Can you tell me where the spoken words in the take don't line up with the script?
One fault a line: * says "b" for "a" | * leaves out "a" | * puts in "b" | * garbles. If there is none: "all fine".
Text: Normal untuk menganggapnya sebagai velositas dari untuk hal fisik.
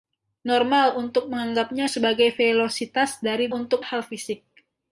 all fine